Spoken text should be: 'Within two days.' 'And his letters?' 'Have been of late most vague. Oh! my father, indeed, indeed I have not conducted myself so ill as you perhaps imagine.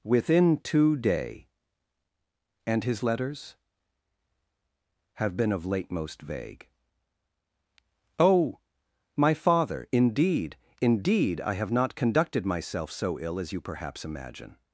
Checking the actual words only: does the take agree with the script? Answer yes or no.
no